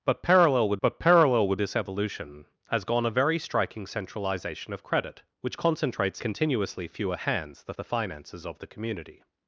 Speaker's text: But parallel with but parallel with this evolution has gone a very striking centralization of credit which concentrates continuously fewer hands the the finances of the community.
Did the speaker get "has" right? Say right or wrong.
right